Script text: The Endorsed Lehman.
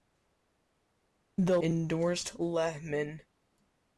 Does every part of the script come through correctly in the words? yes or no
yes